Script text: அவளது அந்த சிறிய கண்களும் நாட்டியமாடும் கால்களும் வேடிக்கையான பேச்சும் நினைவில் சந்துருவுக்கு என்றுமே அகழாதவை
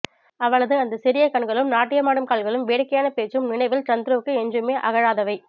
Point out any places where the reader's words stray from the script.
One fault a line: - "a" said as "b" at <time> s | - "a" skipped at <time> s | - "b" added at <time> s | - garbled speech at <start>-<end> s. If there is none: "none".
none